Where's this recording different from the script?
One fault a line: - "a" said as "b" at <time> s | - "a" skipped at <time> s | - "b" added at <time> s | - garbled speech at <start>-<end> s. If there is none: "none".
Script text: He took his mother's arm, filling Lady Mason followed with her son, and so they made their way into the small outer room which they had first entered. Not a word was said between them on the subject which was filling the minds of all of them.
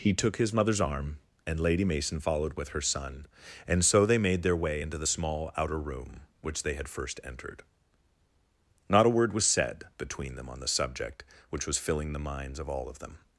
- "filling" said as "and" at 1.4 s